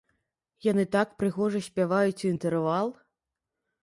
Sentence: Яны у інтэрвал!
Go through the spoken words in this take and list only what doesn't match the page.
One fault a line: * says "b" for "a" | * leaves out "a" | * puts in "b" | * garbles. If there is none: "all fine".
* puts in "так прыгожа спяваюць"